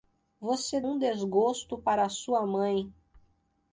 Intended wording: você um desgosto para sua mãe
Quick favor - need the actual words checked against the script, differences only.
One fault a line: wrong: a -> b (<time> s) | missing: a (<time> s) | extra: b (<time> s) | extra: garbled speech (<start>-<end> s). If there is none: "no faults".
no faults